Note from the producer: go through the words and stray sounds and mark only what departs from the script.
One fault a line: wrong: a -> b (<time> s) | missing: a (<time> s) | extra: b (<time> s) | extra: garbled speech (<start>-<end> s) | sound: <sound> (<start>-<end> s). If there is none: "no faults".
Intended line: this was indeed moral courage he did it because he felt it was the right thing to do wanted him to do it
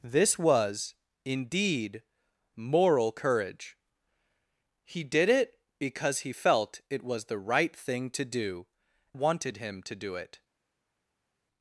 no faults